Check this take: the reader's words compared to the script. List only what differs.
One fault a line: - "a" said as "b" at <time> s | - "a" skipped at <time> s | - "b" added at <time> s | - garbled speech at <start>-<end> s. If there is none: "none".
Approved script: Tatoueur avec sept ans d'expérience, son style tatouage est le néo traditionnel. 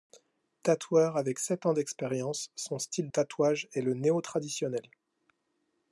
none